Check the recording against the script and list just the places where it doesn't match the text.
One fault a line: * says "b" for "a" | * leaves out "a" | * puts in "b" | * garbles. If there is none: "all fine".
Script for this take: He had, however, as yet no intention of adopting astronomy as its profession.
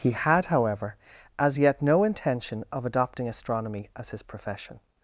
* says "his" for "its"